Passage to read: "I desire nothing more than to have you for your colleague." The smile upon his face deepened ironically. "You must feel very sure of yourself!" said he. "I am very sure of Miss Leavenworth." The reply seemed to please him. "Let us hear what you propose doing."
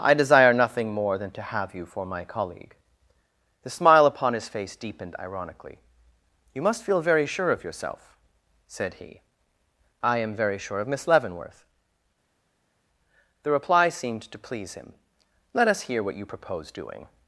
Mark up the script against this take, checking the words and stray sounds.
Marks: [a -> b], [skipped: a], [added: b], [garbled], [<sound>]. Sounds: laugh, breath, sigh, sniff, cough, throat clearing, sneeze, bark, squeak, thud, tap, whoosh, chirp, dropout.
"I desire nothing more than to have you for [your -> my] colleague." The smile upon his face deepened ironically. "You must feel very sure of yourself!" said he. "I am very sure of Miss Leavenworth." The reply seemed to please him. "Let us hear what you propose doing."